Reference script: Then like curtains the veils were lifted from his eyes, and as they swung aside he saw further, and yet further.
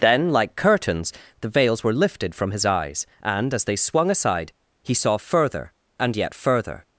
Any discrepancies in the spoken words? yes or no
no